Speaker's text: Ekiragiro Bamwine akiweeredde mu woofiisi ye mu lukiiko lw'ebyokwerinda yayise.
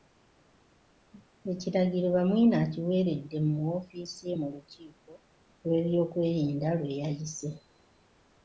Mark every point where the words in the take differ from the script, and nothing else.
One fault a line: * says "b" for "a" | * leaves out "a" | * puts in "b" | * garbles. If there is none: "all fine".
* puts in "lwe"